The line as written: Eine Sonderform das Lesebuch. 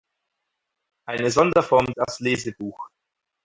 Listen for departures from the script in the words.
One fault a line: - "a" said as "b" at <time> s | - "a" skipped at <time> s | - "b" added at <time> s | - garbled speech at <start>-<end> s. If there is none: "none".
none